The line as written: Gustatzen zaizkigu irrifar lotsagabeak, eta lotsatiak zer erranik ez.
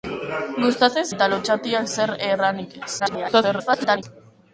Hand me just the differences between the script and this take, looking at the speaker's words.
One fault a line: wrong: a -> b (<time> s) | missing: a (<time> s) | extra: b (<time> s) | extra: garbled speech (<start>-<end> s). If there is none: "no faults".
missing: zaizkigu irrifar lotsagabeak (1.1 s)
extra: garbled speech (3.0-4.0 s)